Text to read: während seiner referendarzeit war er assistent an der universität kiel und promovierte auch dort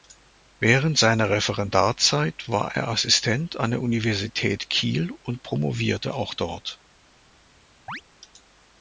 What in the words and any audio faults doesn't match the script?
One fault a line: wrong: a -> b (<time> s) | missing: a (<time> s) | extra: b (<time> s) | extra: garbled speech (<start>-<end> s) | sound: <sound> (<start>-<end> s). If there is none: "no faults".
sound: chirp (7.9-8.0 s)